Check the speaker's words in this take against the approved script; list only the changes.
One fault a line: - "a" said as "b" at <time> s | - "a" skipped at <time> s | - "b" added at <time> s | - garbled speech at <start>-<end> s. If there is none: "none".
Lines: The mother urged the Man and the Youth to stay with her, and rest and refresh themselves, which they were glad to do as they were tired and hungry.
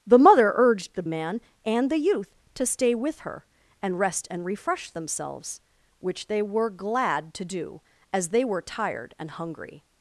none